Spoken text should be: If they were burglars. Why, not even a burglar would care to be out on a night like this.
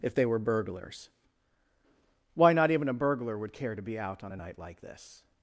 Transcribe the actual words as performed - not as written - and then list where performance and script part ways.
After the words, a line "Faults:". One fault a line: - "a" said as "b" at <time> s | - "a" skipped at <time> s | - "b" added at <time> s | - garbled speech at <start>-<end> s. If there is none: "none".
If they were burglars. Why, not even a burglar would care to be out on a night like this.
Faults:
none